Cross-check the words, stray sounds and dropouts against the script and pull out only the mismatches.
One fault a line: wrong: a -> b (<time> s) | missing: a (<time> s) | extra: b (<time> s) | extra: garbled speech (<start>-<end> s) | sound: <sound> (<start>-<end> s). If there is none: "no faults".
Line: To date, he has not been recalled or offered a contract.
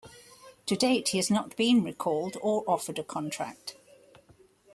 no faults